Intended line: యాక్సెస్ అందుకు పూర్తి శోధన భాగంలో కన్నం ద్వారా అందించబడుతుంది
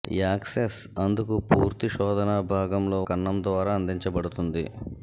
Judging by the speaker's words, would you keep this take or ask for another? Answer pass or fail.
pass